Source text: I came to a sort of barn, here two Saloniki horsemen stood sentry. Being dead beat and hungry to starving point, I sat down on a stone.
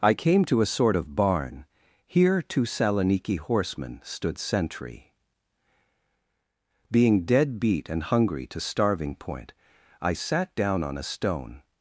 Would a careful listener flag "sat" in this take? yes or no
no